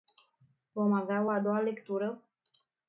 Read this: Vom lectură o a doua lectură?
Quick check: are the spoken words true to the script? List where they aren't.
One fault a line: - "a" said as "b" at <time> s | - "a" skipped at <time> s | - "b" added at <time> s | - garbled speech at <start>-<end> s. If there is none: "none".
- "lectură" said as "avea" at 0.9 s